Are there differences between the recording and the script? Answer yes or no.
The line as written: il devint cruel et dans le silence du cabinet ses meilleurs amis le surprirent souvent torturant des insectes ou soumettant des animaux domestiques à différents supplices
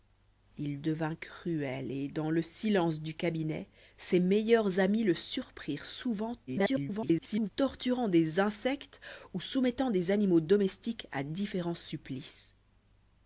yes